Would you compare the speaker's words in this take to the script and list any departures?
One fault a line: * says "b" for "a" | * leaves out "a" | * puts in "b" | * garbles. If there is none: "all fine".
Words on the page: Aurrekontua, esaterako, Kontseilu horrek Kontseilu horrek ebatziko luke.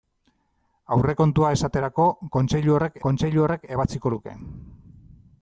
all fine